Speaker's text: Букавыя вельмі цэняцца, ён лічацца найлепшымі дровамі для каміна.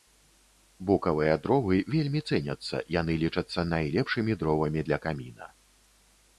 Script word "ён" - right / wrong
wrong